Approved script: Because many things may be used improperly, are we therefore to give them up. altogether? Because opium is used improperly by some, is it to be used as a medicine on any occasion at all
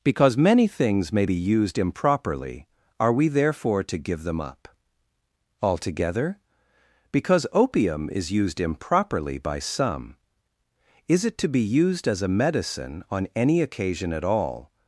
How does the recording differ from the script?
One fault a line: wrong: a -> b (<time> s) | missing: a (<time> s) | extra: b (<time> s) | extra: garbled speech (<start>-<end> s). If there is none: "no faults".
no faults